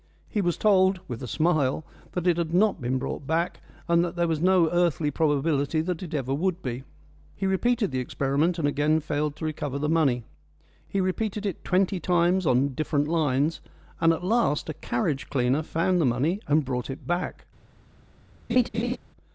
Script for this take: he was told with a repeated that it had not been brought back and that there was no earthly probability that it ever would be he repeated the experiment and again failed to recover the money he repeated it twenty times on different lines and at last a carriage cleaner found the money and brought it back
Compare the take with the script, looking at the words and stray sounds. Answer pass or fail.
fail